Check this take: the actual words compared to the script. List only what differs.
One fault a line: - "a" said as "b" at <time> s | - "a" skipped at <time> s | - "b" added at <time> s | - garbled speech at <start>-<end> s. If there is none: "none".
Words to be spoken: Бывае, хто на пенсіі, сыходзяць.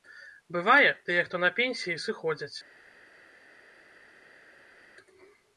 - "тыя" added at 1.1 s